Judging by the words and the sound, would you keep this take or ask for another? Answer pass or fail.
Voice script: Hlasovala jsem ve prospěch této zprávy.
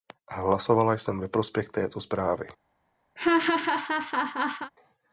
fail